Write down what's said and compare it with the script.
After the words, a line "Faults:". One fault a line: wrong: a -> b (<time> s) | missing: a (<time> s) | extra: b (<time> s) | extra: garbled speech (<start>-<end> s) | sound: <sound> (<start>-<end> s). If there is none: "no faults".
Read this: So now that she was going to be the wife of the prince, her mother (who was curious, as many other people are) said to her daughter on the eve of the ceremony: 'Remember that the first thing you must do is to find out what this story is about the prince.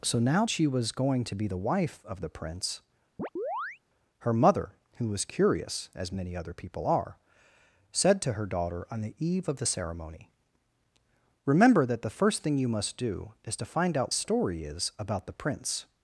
So now she was going to be the wife of the prince, her mother (who was curious, as many other people are) said to her daughter on the eve of the ceremony: 'Remember that the first thing you must do is to find out story is about the prince.
Faults:
missing: that (0.5 s)
sound: chirp (3.2-3.8 s)
missing: what this (14.1 s)